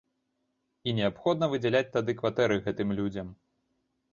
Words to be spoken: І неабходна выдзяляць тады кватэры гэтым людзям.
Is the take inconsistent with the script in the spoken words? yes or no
no